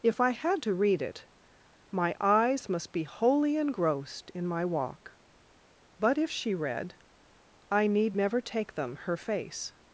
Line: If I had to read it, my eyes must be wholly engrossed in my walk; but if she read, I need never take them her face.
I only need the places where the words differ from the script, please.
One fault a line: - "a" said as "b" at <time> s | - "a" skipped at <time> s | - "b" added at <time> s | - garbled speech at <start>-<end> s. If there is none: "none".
none